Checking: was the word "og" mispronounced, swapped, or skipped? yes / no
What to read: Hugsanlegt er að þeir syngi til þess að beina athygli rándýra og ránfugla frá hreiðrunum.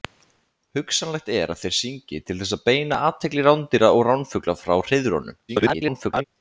no